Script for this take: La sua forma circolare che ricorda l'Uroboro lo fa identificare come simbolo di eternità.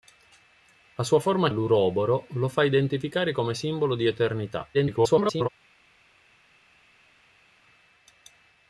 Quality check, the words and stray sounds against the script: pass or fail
fail